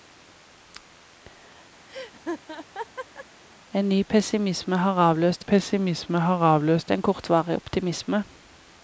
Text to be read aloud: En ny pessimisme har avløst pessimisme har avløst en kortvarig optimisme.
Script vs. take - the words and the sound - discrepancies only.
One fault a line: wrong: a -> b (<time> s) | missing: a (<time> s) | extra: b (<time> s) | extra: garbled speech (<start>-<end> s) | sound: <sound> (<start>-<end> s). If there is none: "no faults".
sound: laugh (1.9-3.3 s)